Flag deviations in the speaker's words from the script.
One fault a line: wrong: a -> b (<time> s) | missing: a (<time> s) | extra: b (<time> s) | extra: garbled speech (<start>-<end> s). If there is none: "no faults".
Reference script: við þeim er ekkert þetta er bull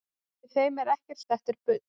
no faults